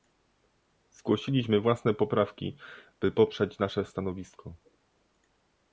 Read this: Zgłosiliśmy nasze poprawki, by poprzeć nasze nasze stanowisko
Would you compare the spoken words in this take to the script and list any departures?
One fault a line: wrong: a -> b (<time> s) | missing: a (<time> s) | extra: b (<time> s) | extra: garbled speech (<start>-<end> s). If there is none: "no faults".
wrong: nasze -> własne (1.6 s)
missing: nasze (3.8 s)